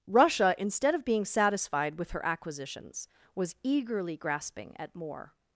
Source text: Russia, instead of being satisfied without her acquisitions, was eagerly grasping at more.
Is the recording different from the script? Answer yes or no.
yes